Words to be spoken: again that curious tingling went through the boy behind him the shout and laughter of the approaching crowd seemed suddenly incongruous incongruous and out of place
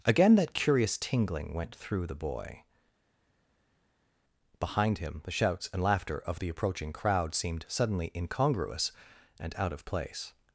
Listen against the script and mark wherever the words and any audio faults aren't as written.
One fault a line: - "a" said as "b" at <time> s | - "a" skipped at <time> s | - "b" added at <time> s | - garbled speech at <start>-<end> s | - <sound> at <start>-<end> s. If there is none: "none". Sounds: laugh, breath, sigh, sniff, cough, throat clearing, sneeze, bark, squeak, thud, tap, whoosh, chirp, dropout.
- "shout" said as "shouts" at 5.3 s
- "incongruous" skipped at 8.9 s